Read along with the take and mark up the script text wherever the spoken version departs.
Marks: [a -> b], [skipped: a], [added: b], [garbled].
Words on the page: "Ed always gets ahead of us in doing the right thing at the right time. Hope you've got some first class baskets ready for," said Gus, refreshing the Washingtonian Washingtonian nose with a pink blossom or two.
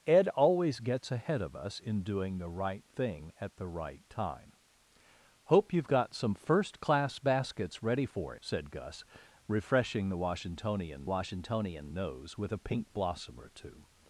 "Ed always gets ahead of us in doing the right thing at the right time. Hope you've got some first class baskets ready for," said Gus, refreshing the Washingtonian Washingtonian nose with a pink blossom or two.